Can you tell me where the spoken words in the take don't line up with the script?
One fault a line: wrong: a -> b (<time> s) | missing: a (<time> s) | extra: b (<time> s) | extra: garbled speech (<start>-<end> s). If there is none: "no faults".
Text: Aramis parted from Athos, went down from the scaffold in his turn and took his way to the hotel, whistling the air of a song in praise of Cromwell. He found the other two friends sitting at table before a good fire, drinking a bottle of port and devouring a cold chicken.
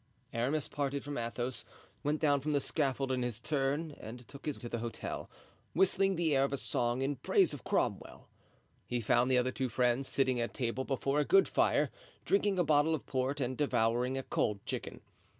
missing: way (4.6 s)